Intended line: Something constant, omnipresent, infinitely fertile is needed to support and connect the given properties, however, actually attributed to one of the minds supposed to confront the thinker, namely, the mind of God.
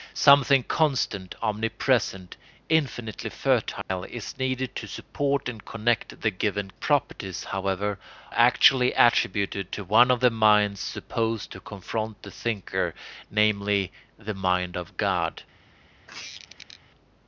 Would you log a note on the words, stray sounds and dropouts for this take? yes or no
yes